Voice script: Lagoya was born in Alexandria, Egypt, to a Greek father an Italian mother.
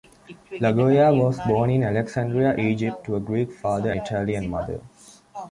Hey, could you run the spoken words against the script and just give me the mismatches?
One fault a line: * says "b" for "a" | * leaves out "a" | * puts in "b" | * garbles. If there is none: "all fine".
all fine